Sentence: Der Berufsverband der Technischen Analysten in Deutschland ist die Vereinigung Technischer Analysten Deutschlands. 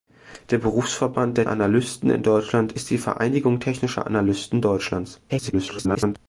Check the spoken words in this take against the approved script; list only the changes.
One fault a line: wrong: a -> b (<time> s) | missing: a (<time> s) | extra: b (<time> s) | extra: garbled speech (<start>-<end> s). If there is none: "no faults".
missing: Technischen (1.5 s)
extra: garbled speech (5.3-6.2 s)